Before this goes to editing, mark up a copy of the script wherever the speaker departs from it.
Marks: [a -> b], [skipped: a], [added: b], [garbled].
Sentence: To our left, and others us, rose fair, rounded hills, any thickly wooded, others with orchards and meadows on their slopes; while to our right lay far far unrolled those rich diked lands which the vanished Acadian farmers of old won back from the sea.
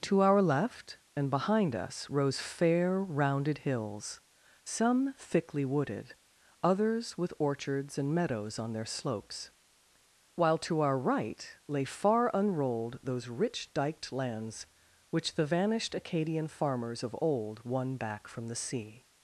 To our left, and [others -> behind] us, rose fair, rounded hills, [any -> some] thickly wooded, others with orchards and meadows on their slopes; while to our right lay far [skipped: far] unrolled those rich diked lands which the vanished Acadian farmers of old won back from the sea.